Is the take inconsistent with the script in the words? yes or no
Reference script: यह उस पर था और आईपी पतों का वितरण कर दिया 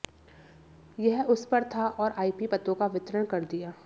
no